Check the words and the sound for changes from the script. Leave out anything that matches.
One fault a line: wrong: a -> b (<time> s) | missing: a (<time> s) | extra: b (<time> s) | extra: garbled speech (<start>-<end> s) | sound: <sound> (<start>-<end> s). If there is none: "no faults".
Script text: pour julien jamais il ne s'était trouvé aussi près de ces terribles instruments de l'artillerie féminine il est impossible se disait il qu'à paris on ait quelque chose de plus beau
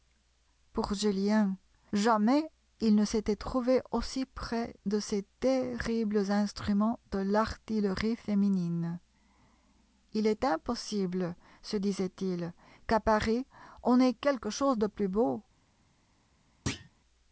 sound: thud (16.7-16.9 s)